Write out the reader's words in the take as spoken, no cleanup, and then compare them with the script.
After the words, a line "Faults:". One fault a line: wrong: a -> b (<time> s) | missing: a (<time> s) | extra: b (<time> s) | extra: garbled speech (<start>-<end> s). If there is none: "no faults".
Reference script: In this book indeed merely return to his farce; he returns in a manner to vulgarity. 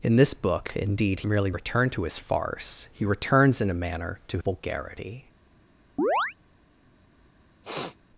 In this book indeed merely return to his farce; he returns in a manner to vulgarity.
Faults:
no faults